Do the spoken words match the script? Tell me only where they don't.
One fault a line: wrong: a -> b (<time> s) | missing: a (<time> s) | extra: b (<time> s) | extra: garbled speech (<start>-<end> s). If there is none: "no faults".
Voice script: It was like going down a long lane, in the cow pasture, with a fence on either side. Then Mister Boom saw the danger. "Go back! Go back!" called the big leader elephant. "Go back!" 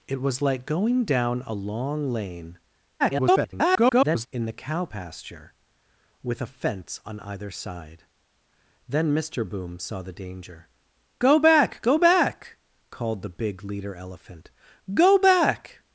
extra: garbled speech (3.0-4.3 s)